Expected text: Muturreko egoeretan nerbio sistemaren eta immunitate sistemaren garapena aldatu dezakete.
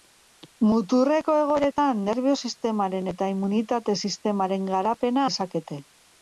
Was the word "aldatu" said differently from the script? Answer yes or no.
yes